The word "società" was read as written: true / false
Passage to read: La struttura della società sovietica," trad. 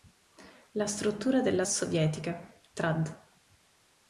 false